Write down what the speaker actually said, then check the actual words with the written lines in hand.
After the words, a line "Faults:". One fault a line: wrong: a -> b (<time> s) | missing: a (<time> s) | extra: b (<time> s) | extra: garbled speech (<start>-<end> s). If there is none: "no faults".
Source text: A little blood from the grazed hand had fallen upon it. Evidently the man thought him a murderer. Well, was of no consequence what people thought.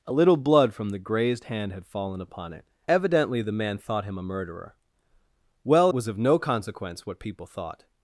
A little blood from the grazed hand had fallen upon it. Evidently the man thought him a murderer. Well, was of no consequence what people thought.
Faults:
no faults